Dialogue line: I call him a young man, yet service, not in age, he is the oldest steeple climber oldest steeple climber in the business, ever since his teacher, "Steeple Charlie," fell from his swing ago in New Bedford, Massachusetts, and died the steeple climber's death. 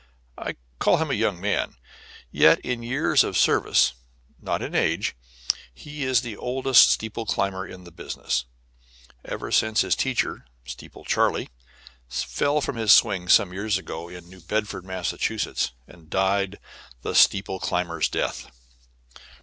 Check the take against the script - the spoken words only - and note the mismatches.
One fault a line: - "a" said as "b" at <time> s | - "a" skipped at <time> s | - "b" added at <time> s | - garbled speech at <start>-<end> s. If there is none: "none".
- "in years of" added at 2.6 s
- "oldest steeple climber" skipped at 7.7 s
- "some years" added at 13.3 s